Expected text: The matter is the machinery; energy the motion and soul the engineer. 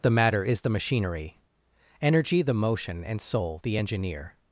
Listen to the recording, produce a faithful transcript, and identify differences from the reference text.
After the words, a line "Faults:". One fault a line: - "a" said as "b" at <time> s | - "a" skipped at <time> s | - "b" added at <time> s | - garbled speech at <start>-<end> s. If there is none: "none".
The matter is the machinery; energy the motion and soul the engineer.
Faults:
none